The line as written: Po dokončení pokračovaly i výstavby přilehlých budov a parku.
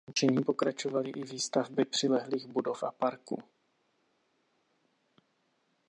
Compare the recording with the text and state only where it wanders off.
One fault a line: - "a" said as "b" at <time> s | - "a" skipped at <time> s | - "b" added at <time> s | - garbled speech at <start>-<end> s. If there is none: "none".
none